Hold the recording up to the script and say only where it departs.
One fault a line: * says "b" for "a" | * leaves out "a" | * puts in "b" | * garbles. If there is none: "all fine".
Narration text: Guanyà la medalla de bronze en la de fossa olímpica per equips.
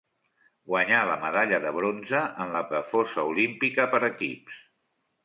all fine